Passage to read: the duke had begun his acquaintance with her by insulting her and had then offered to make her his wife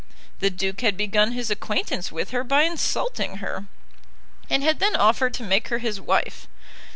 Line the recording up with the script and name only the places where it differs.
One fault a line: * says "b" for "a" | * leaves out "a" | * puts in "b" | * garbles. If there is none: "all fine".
all fine